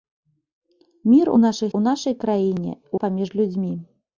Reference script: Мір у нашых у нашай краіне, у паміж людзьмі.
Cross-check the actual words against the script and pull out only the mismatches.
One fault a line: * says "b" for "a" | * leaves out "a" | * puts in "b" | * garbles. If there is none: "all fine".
all fine